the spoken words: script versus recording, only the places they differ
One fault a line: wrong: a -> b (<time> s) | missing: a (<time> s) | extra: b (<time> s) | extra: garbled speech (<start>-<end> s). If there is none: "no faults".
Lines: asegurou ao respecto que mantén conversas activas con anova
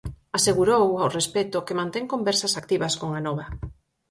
no faults